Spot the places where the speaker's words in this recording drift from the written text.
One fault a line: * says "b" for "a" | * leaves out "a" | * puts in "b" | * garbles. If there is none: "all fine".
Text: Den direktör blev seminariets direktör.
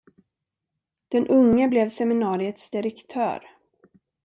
* says "unge" for "direktör"